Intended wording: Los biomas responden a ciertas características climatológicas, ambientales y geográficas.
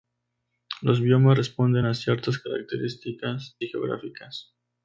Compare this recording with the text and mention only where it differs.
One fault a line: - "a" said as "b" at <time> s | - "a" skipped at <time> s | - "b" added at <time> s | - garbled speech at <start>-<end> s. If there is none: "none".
- "climatológicas ambientales" skipped at 3.6 s